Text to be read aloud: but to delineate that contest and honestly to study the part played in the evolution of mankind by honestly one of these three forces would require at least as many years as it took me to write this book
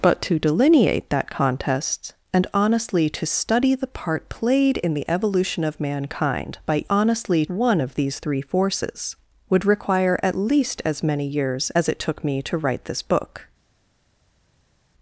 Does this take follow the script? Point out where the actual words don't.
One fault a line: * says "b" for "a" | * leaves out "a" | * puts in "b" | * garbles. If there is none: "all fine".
all fine